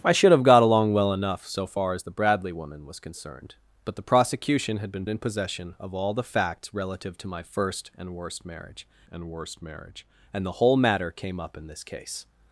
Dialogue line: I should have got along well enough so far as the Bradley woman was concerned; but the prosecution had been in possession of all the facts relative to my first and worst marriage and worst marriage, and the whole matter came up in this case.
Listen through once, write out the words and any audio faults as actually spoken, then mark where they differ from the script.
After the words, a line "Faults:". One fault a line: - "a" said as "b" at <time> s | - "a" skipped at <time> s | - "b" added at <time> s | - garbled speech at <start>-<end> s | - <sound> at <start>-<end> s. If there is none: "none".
I should have got along well enough so far as the Bradley woman was concerned; but the prosecution had been in possession of all the facts relative to my first and worst marriage and worst marriage, and the whole matter came up in this case.
Faults:
none